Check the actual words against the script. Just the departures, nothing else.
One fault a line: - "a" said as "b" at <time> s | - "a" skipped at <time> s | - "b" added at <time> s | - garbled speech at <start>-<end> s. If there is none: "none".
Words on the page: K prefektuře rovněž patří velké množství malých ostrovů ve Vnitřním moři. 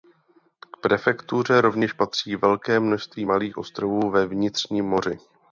none